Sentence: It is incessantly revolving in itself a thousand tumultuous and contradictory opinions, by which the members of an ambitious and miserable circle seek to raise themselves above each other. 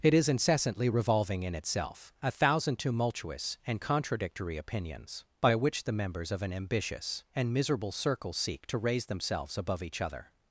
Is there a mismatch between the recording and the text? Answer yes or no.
no